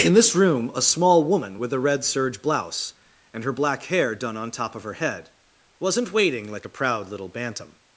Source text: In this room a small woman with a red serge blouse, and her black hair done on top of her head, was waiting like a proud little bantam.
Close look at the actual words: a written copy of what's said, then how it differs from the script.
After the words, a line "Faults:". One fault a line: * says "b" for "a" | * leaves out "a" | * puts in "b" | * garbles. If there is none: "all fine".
In this room a small woman with a red serge blouse, and her black hair done on top of her head, wasn't waiting like a proud little bantam.
Faults:
* says "wasn't" for "was"